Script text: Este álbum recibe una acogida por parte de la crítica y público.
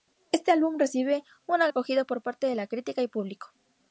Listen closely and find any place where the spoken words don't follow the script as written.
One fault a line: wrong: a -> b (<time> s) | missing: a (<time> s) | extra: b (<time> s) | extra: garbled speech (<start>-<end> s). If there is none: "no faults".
no faults